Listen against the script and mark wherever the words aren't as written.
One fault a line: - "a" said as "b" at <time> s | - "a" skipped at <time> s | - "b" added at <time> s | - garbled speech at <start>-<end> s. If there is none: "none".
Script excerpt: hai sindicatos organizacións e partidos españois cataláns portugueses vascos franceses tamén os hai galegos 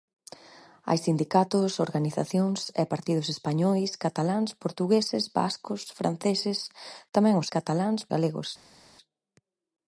- "hai" said as "cataláns" at 7.5 s